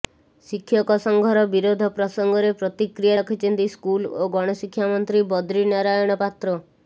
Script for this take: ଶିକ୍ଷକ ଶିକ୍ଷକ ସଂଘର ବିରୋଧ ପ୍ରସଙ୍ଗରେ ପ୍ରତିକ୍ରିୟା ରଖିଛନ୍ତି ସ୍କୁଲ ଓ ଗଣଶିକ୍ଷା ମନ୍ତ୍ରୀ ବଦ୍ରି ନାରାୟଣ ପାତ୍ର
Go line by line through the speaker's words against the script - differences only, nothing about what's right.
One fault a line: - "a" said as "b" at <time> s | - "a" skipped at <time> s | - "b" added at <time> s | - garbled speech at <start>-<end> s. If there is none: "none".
- "ଶିକ୍ଷକ" skipped at 0.9 s